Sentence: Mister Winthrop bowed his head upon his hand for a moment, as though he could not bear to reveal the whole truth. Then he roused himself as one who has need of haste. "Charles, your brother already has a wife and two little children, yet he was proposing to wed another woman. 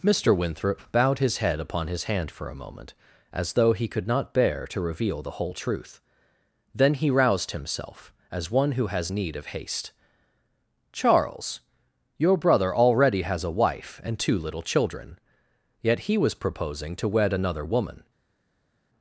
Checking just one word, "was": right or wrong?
right